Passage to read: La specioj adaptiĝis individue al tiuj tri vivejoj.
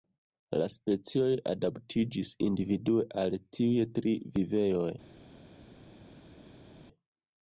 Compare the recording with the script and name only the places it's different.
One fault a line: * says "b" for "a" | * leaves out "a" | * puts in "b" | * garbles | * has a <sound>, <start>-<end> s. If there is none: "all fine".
all fine